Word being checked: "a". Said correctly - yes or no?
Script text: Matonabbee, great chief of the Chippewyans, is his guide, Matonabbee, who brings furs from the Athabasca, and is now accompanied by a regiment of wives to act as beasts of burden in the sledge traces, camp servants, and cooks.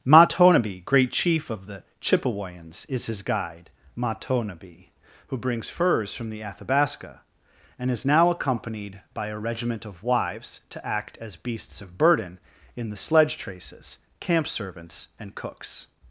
yes